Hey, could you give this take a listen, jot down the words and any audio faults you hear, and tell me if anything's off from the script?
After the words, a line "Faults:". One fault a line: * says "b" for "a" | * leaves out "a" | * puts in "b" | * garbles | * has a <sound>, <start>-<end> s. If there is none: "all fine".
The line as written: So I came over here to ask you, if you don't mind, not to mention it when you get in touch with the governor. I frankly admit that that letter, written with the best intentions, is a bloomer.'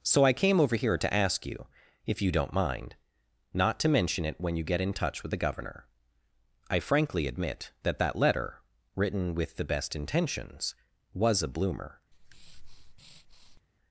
So I came over here to ask you, if you don't mind, not to mention it when you get in touch with the governor. I frankly admit that that letter, written with the best intentions, was a bloomer.'
Faults:
* says "was" for "is"
* has a breath, 12.1-13.6 s